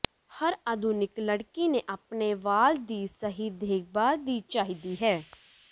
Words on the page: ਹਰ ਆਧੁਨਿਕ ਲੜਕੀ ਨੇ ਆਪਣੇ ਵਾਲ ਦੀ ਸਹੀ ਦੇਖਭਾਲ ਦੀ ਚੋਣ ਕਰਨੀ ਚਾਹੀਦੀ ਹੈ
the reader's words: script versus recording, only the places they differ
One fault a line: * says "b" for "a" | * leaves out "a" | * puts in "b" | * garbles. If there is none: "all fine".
* leaves out "ਚੋਣ ਕਰਨੀ"